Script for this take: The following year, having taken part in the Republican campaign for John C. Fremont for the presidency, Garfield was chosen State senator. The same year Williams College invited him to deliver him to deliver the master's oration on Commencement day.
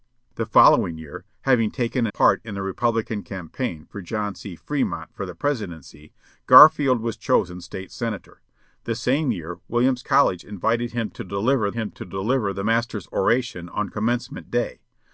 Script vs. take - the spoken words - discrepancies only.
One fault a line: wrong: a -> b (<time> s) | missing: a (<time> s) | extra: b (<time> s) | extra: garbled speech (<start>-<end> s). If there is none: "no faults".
no faults